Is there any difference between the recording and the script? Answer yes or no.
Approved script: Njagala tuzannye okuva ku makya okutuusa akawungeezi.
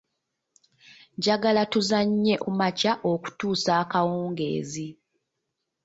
yes